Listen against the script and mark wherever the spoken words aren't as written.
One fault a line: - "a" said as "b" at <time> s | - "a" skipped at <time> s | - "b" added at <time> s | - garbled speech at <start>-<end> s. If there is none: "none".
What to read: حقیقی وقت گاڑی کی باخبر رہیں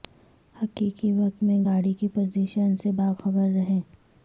- "میں" added at 1.4 s
- "پوزیشن سے" added at 2.1 s